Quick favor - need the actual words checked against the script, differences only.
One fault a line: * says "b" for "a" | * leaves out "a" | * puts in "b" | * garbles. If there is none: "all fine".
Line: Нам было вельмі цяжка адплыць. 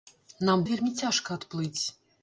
* leaves out "было"